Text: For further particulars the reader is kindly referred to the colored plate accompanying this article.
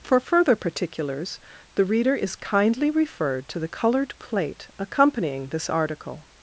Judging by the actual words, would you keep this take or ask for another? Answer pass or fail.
pass